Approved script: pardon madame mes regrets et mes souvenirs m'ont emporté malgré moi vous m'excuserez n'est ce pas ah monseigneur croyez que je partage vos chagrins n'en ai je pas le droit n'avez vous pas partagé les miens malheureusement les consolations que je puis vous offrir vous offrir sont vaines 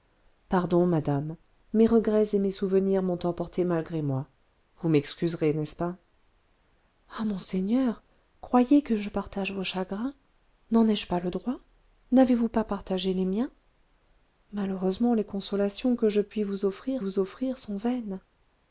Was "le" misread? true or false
false